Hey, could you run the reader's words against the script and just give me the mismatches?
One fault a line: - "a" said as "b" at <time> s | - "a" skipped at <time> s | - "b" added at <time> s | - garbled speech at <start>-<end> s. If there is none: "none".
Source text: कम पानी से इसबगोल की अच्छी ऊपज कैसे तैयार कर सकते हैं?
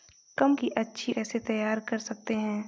- "पानी से इसबगोल" skipped at 0.6 s
- "ऊपज" skipped at 1.1 s